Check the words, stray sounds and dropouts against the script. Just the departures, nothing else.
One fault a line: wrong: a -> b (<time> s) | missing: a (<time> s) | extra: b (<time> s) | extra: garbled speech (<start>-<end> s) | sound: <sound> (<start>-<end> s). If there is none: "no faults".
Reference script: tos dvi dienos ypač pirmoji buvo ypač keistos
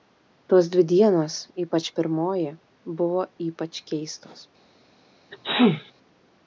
sound: sneeze (5.3-5.9 s)